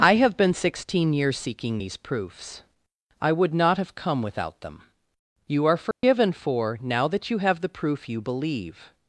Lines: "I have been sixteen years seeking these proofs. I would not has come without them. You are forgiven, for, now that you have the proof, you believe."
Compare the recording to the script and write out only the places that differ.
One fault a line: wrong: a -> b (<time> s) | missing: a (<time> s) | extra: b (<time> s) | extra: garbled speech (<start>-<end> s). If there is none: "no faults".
wrong: has -> have (3.8 s)